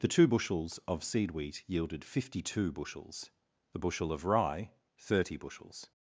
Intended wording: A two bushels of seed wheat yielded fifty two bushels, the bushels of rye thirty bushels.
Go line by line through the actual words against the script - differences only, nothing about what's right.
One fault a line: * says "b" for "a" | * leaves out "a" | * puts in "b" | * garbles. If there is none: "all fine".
* says "The" for "A"
* says "bushel" for "bushels"